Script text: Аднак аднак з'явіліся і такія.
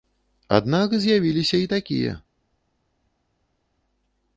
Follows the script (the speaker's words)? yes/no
no